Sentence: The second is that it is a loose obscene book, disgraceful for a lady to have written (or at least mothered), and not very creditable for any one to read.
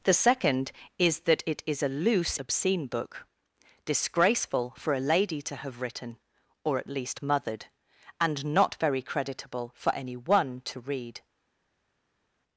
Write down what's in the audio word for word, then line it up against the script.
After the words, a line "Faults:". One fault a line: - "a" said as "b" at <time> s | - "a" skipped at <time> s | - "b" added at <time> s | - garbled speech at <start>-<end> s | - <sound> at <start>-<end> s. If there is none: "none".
The second is that it is a loose obscene book, disgraceful for a lady to have written (or at least mothered), and not very creditable for any one to read.
Faults:
none